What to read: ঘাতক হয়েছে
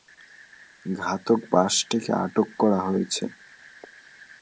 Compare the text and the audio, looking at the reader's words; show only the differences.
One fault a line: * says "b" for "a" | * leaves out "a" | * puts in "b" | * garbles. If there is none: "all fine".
* puts in "বাসটিকে আটক করা"